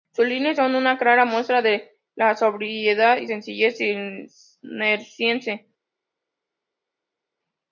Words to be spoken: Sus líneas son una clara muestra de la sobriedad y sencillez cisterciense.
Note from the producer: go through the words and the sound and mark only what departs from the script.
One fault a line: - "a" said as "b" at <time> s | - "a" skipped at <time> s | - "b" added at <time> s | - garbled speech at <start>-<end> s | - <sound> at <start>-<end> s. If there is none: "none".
none